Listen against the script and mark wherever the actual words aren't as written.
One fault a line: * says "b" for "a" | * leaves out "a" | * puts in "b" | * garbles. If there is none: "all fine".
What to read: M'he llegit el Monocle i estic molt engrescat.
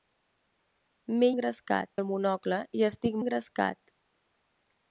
* says "engrescat" for "llegit"
* leaves out "molt"